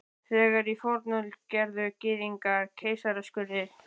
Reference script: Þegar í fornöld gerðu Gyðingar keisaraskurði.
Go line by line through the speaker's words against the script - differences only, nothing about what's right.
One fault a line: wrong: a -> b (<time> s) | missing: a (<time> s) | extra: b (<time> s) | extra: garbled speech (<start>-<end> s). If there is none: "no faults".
no faults